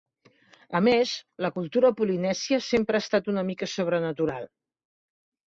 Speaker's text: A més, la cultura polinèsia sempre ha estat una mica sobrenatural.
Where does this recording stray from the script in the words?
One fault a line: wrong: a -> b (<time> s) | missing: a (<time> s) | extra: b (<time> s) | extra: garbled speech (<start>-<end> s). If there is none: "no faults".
no faults